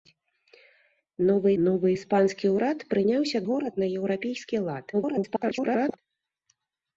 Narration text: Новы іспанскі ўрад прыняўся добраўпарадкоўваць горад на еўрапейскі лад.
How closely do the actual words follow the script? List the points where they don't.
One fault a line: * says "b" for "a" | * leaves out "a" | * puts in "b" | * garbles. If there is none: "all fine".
* puts in "новы"
* leaves out "добраўпарадкоўваць"
* garbles